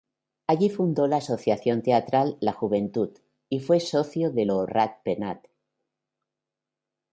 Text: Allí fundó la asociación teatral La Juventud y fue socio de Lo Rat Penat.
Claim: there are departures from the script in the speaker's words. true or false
false